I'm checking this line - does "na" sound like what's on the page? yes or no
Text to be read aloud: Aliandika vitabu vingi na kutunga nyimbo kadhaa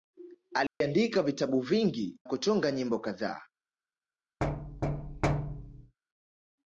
no